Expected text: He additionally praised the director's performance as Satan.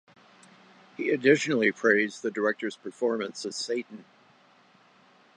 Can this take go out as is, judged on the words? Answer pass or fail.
pass